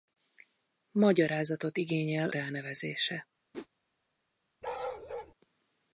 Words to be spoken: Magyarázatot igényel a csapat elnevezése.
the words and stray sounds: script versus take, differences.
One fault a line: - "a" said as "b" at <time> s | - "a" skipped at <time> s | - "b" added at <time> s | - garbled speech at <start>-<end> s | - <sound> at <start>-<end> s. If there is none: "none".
- "a csapat" skipped at 2.3 s
- whoosh at 3.5-3.7 s
- bark at 4.6-5.3 s